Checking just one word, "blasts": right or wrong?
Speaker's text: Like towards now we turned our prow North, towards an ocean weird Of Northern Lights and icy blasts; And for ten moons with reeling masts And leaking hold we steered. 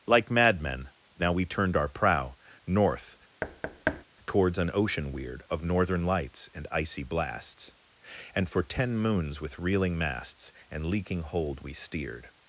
right